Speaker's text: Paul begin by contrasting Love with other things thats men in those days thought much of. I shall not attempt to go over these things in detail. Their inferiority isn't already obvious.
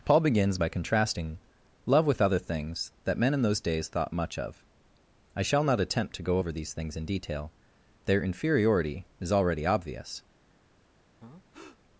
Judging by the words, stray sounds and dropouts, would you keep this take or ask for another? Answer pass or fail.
fail